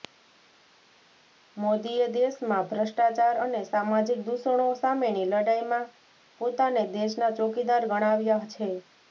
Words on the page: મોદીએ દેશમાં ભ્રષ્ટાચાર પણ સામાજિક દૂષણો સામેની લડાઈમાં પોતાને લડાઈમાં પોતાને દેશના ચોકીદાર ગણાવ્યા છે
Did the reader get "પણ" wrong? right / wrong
wrong